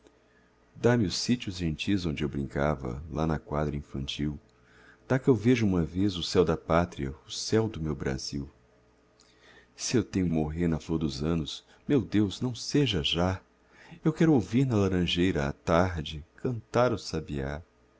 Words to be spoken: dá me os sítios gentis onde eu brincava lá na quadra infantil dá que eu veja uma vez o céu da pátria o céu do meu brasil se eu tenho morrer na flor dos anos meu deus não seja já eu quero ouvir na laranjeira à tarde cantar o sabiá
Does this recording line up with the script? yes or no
yes